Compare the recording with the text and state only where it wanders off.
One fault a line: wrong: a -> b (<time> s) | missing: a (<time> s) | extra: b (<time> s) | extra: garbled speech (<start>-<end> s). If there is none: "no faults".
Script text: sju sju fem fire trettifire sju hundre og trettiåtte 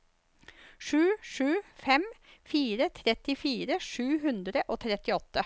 no faults